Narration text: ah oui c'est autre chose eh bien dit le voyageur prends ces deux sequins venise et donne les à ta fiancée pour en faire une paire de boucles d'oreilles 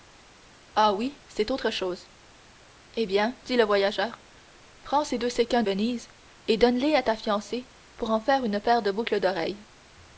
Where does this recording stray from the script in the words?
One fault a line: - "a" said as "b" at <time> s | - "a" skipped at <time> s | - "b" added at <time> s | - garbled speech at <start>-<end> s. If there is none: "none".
none